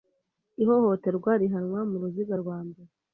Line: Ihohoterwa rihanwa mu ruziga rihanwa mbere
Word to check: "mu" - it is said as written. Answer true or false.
true